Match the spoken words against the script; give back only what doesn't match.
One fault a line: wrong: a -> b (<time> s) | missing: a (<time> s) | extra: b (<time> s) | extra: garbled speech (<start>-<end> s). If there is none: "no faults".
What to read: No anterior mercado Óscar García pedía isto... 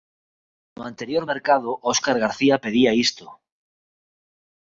no faults